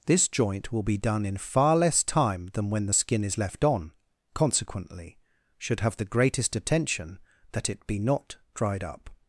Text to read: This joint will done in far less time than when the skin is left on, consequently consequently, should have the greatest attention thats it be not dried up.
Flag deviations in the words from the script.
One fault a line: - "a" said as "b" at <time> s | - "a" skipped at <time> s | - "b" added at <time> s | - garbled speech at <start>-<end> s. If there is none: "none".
- "be" added at 0.8 s
- "consequently" skipped at 5.2 s
- "thats" said as "that" at 7.5 s